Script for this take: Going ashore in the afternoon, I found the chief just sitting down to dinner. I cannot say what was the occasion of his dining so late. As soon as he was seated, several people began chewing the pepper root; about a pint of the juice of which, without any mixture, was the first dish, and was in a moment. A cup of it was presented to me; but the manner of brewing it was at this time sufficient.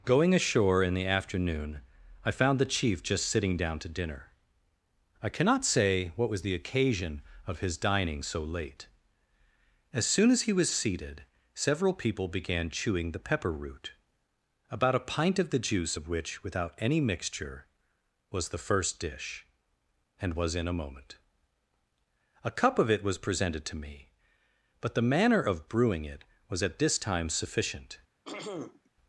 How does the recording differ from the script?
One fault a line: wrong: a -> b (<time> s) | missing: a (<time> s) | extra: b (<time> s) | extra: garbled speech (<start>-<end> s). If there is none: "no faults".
no faults